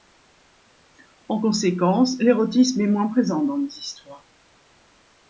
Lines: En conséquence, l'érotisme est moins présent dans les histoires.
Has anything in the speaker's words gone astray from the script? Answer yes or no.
no